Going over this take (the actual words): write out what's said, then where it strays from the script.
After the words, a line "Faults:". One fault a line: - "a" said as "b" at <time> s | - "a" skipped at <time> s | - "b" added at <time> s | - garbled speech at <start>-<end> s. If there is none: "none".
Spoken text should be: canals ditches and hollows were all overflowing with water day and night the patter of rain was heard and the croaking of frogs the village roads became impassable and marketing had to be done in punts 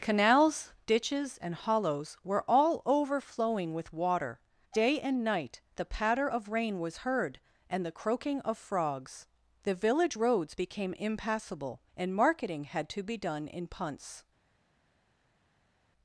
canals ditches and hollows were all overflowing with water day and night the patter of rain was heard and the croaking of frogs the village roads became impassable and marketing had to be done in punts
Faults:
none